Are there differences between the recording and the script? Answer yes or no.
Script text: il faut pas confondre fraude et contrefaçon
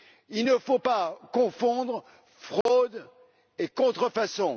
yes